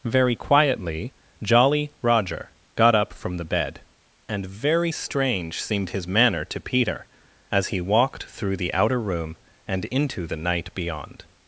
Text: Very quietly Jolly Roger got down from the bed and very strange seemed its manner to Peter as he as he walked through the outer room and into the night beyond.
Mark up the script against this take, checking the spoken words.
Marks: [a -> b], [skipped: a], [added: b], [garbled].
Very quietly Jolly Roger got [down -> up] from the bed and very strange seemed [its -> his] manner to Peter as he [skipped: as he] walked through the outer room and into the night beyond.